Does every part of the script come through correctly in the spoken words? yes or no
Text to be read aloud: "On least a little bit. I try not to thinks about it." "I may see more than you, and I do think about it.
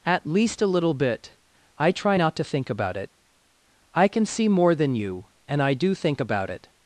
no